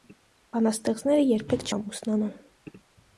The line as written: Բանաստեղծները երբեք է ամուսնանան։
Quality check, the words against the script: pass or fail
pass